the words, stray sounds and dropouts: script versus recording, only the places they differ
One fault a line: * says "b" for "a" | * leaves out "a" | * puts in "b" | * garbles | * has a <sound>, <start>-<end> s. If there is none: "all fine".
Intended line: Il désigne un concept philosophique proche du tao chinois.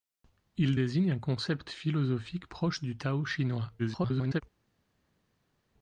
* garbles